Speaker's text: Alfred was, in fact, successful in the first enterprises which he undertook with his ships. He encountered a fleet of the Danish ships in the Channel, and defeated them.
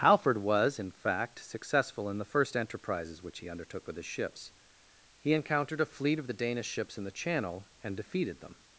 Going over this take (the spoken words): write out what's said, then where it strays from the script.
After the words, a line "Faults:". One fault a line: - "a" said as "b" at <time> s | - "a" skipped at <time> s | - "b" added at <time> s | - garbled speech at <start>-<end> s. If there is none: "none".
Alfred was, in fact, successful in the first enterprises which he undertook with his ships. He encountered a fleet of the Danish ships in the Channel, and defeated them.
Faults:
none